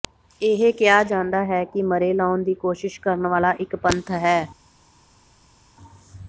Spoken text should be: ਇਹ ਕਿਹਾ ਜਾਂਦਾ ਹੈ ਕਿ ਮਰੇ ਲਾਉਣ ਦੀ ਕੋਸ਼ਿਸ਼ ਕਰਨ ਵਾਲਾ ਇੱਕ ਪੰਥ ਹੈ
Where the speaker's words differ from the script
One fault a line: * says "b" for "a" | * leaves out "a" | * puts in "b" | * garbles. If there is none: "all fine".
all fine